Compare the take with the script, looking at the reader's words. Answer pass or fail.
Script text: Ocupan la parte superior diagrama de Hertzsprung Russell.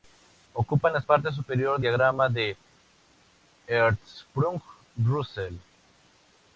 pass